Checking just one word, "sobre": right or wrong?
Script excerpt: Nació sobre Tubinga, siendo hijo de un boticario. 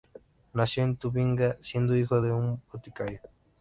wrong